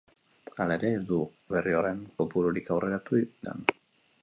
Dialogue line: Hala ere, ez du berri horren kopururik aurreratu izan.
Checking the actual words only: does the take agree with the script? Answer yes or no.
yes